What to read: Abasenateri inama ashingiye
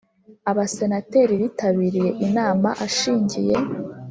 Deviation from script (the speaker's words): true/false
true